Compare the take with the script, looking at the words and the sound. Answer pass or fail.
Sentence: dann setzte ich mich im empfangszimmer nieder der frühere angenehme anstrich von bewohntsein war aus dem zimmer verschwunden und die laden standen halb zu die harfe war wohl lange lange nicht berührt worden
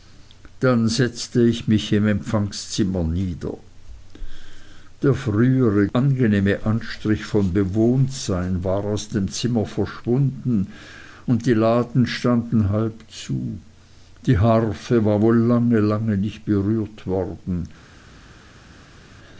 pass